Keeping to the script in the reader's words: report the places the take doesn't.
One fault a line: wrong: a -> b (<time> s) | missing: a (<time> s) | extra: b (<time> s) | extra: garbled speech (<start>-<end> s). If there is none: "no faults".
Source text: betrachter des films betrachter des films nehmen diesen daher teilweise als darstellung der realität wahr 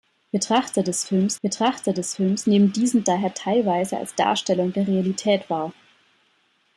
no faults